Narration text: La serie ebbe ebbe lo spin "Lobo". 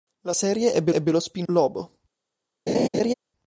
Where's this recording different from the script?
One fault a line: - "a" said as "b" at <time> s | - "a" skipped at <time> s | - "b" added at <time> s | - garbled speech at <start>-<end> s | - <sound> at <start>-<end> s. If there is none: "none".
- laugh at 2.7-3.1 s